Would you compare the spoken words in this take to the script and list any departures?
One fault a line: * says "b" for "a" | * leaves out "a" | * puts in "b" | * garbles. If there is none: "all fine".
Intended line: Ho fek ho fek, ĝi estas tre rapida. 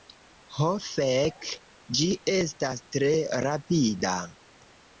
* leaves out "ho fek"